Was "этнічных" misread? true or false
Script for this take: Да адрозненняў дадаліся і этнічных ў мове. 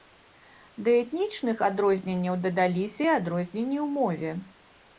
true